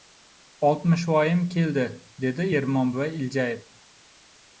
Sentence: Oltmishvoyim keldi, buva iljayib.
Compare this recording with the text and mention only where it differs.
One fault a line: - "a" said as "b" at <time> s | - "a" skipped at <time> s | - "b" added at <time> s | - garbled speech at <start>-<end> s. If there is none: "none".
- "dedi Ermon" added at 2.3 s